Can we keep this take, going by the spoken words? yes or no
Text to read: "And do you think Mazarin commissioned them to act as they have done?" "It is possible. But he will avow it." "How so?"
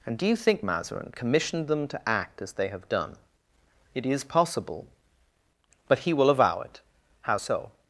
yes